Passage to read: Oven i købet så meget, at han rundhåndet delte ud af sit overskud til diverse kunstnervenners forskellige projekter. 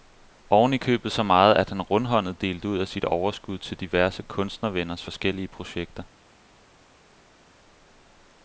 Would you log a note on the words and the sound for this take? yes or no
no